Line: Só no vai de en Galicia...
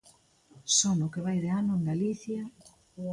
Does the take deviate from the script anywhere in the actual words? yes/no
yes